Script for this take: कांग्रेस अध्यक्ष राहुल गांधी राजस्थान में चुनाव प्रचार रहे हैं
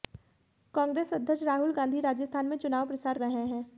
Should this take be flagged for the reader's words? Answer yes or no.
no